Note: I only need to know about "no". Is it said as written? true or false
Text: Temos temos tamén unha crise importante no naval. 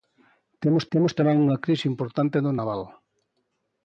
true